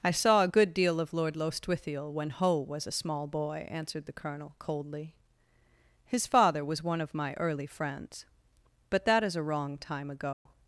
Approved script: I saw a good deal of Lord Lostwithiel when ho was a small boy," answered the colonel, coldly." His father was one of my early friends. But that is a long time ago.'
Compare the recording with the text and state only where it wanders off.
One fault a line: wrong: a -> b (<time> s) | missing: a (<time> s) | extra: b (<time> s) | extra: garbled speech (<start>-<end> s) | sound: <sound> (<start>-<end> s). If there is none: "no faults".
wrong: long -> wrong (9.4 s)
sound: dropout (10.3-10.5 s)